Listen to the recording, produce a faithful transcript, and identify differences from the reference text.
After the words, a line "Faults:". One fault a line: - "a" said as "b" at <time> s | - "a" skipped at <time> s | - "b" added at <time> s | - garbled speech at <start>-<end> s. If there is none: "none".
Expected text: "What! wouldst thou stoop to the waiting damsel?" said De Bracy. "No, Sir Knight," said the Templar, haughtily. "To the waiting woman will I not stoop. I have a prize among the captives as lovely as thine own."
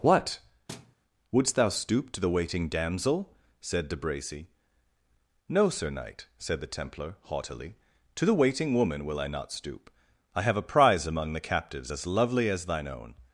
"What! wouldst thou stoop to the waiting damsel?" said De Bracy. "No, Sir Knight," said the Templar, haughtily. "To the waiting woman will I not stoop. I have a prize among the captives as lovely as thine own."
Faults:
none